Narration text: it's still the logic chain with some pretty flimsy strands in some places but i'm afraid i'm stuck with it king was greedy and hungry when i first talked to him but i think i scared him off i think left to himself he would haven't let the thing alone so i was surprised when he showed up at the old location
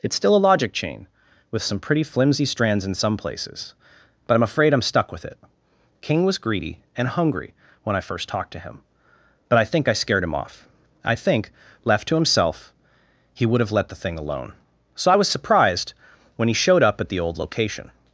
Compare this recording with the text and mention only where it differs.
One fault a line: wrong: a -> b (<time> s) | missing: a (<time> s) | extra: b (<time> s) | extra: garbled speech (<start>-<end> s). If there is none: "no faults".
wrong: the -> a (0.3 s)
wrong: haven't -> have (13.6 s)